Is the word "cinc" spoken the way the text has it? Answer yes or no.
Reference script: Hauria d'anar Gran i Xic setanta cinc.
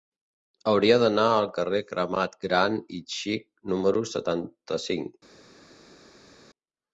yes